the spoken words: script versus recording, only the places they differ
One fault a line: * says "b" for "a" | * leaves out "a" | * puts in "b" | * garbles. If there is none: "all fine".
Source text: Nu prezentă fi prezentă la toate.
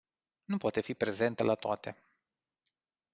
* says "poate" for "prezentă"